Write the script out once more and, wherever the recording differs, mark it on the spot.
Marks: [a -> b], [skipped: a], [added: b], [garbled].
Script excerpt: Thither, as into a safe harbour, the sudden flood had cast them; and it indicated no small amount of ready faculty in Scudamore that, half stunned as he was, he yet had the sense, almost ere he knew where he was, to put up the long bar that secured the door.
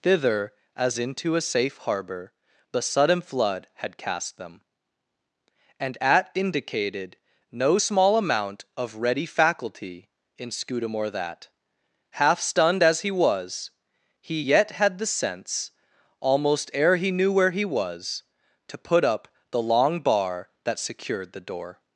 Thither, as into a safe harbour, the sudden flood had cast them; and [it -> at] indicated no small amount of ready faculty in Scudamore that, half stunned as he was, he yet had the sense, almost ere he knew where he was, to put up the long bar that secured the door.